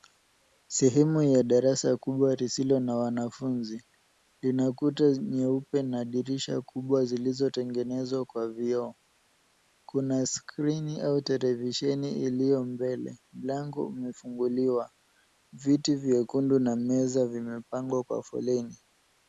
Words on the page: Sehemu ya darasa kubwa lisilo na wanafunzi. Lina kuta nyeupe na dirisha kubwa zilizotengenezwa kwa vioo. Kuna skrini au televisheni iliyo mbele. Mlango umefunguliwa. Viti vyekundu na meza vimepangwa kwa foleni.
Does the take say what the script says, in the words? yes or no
yes